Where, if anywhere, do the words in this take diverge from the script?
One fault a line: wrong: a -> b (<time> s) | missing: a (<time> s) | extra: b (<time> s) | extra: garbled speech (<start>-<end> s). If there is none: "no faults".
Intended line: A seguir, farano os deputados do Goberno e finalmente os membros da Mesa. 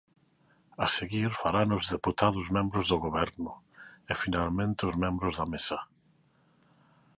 extra: membros (2.6 s)